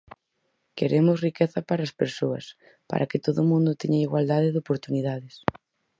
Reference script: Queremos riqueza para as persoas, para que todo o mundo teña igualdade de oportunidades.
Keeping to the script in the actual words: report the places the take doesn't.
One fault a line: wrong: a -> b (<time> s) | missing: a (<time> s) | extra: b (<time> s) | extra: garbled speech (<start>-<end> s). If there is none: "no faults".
no faults